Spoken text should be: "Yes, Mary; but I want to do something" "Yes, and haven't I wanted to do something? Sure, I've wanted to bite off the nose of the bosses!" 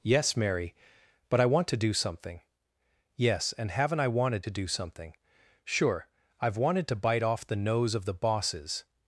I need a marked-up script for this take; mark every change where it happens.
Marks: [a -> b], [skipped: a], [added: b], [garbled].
"Yes, Mary; but I want to do something" "Yes, and haven't I wanted to do something? Sure, I've wanted to bite off the nose of the bosses!"